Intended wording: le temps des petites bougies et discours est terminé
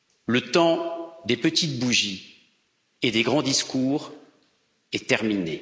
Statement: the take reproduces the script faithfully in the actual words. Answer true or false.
false